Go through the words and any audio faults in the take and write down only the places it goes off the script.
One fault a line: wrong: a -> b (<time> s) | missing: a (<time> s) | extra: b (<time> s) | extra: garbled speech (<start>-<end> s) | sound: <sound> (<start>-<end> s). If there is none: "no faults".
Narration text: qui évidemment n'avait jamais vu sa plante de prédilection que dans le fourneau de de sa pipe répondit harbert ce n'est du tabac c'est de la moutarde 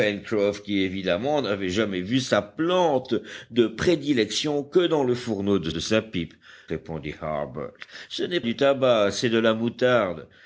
no faults